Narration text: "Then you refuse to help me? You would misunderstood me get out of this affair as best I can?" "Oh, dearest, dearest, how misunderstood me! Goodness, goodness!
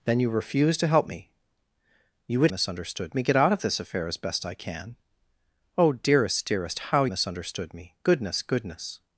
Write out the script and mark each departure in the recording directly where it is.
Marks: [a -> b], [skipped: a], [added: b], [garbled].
"Then you refuse to help me? You would misunderstood me get out of this affair as best I can?" "Oh, dearest, dearest, how misunderstood me! Goodness, goodness!